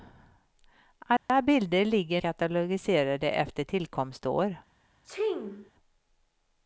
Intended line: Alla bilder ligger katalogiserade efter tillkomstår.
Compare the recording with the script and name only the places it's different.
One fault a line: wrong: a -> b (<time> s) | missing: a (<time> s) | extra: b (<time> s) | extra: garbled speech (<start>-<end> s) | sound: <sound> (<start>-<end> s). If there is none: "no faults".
sound: dropout (1.2-1.3 s)
sound: sneeze (5.0-5.7 s)